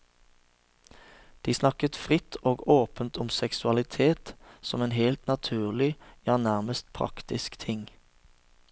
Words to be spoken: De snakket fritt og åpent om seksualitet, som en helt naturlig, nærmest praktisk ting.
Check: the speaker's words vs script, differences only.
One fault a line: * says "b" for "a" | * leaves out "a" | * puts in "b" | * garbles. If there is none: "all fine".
* puts in "ja"